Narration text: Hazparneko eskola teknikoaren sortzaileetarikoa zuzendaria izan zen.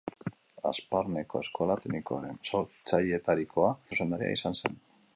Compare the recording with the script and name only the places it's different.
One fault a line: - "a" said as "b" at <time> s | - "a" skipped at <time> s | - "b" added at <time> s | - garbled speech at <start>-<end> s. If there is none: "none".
none